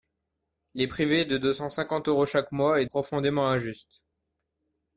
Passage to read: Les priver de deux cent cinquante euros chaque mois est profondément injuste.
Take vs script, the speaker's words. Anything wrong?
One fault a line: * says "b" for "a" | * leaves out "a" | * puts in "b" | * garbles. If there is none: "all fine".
all fine